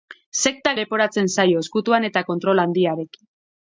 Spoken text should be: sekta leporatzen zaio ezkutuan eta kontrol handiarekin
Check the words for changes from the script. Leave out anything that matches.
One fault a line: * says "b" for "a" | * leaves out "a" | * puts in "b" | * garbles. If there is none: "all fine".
all fine